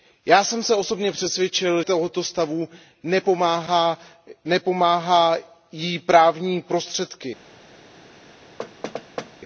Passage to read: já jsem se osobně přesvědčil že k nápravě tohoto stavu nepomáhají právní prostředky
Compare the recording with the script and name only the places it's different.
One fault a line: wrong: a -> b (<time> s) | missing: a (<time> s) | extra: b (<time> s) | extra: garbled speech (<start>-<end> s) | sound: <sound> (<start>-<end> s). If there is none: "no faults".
missing: že k nápravě (1.8 s)
sound: thud (8.6-9.3 s)